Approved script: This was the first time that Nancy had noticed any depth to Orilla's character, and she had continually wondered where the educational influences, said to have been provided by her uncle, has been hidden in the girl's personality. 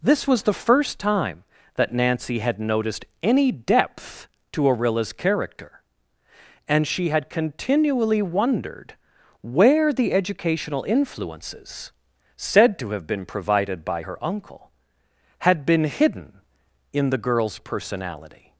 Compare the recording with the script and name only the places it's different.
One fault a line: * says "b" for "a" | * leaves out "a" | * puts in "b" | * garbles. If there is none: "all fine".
* says "had" for "has"